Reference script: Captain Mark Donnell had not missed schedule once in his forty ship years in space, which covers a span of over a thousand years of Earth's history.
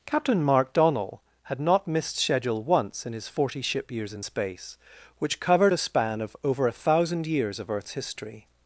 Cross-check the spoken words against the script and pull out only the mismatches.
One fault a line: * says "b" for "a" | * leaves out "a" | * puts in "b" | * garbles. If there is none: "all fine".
* says "covered" for "covers"